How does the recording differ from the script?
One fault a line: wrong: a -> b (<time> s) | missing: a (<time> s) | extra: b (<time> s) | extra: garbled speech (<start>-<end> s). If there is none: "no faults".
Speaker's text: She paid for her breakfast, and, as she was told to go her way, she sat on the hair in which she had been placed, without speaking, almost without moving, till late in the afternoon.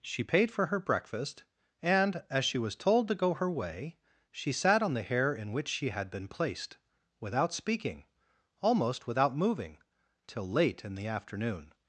no faults